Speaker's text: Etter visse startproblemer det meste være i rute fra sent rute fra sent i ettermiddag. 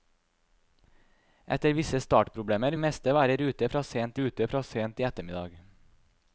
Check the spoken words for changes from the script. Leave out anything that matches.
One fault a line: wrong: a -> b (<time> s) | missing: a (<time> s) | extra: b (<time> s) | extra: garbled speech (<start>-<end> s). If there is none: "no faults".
no faults